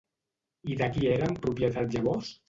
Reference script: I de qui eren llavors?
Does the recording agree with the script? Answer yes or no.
no